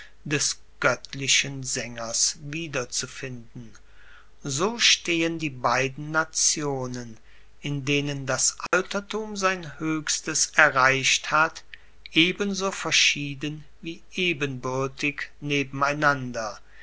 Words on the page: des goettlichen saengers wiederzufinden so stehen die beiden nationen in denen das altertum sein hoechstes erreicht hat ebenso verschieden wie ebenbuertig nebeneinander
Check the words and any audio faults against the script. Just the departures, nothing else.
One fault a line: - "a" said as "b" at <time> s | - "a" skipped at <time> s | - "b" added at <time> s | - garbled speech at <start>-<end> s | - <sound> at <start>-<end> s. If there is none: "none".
- dropout at 8.7-8.7 s